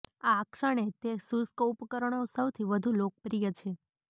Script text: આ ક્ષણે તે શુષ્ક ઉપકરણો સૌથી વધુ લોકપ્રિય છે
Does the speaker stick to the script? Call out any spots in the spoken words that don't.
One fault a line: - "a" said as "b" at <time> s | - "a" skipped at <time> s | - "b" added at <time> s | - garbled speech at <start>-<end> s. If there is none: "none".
none